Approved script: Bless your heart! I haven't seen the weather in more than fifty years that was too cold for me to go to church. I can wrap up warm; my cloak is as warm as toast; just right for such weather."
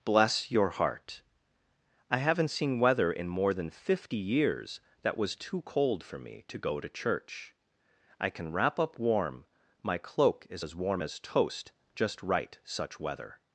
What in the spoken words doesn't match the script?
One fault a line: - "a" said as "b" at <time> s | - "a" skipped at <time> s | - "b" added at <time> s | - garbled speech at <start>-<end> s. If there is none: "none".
- "the" skipped at 2.8 s
- "for" skipped at 12.6 s